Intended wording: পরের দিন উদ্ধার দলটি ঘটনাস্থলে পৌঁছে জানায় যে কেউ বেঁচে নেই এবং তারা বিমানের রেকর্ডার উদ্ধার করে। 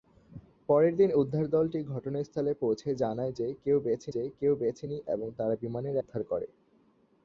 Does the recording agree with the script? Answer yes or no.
no